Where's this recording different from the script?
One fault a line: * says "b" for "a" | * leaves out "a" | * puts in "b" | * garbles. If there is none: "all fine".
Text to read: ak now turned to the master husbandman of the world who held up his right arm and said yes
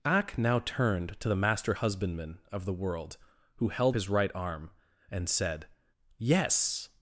* leaves out "up"